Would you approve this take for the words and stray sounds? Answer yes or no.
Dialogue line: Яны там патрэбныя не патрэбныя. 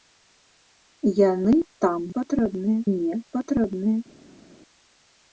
yes